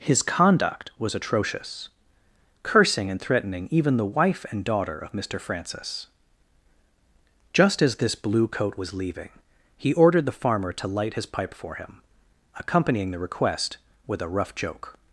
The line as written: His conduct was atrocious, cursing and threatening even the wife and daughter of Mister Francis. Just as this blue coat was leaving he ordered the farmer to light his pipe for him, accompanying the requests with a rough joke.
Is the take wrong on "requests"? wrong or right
wrong